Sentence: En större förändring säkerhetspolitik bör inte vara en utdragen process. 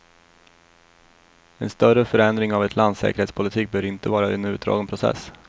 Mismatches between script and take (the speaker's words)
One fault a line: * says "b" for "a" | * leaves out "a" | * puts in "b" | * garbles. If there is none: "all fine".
* puts in "av ett lands"